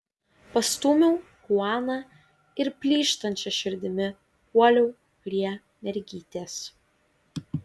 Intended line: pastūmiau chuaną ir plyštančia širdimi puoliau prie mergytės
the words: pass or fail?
pass